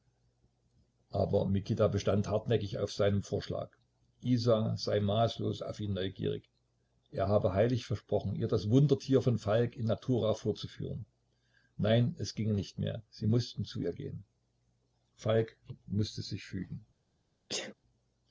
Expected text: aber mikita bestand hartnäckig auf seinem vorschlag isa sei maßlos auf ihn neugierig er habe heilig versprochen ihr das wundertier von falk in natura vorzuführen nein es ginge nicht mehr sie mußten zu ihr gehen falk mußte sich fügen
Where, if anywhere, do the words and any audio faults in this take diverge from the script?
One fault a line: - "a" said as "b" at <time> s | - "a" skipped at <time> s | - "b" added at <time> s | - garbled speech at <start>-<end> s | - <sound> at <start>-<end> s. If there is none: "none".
- sneeze at 17.5-17.7 s